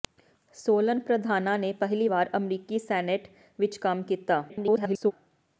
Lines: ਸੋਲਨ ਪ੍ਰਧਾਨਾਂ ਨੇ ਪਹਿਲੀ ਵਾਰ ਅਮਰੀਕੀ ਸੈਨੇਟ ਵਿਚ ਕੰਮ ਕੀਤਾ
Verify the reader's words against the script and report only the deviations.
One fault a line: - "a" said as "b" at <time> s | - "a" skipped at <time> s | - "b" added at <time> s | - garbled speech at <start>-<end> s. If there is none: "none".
- garbled speech at 4.5-5.1 s